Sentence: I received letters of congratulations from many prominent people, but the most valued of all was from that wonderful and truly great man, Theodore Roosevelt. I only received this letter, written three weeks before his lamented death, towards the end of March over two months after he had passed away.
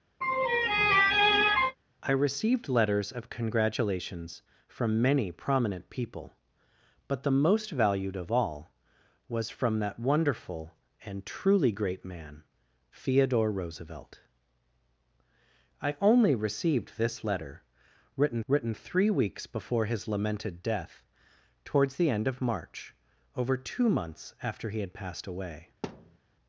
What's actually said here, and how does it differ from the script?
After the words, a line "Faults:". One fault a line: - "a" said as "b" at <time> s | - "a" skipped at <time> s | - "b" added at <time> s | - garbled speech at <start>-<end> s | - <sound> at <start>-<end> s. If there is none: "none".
I received letters of congratulations from many prominent people, but the most valued of all was from that wonderful and truly great man, Theodore Roosevelt. I only received this letter, written written three weeks before his lamented death, towards the end of March over two months after he had passed away.
Faults:
- laugh at 0.2-1.8 s
- "written" added at 18.5 s
- thud at 25.8-26.2 s